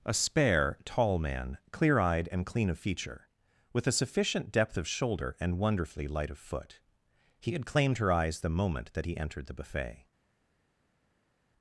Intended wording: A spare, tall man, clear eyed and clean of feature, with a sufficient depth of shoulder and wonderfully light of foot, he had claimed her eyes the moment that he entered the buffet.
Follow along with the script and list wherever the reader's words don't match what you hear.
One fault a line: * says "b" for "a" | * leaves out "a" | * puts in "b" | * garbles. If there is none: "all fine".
all fine